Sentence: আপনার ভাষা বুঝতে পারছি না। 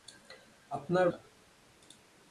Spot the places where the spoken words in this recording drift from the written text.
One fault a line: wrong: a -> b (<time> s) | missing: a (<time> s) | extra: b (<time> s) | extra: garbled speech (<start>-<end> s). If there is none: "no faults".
missing: ভাষা বুঝতে পারছি (1.1 s)